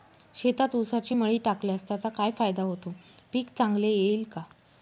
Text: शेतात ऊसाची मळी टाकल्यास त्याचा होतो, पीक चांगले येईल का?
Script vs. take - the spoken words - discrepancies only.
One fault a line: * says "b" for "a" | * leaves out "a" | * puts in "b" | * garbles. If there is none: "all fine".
* puts in "काय फायदा"